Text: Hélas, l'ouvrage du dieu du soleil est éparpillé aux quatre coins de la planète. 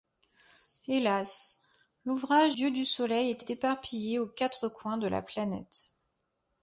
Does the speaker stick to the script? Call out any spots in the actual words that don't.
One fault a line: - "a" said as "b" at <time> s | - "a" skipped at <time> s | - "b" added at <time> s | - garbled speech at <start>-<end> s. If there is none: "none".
- "du" skipped at 2.6 s
- "est" added at 3.4 s